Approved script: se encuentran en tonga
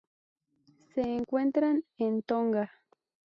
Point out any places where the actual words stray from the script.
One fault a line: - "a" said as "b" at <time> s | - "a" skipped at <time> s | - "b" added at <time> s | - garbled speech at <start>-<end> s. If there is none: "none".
none